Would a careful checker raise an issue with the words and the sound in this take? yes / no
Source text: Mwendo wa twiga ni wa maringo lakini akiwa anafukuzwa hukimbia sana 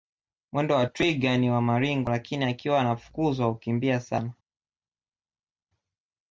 no